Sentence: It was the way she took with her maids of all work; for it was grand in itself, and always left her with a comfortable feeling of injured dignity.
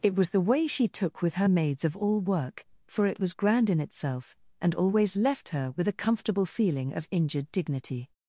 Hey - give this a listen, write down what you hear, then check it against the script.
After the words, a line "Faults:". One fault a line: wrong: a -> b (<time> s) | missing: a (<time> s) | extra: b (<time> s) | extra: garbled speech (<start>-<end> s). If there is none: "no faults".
It was the way she took with her maids of all work; for it was grand in itself, and always left her with a comfortable feeling of injured dignity.
Faults:
no faults